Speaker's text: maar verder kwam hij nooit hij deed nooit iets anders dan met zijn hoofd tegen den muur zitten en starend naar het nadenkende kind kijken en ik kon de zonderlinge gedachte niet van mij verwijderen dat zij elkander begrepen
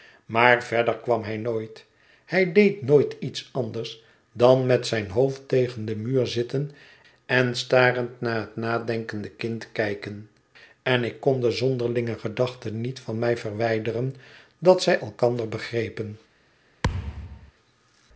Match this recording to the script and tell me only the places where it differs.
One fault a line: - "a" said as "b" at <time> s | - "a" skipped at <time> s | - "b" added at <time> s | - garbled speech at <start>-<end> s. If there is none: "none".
none